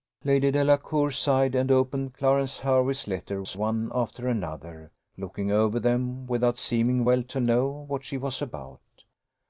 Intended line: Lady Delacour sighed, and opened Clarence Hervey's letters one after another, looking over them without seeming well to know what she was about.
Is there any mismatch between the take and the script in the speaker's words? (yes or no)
no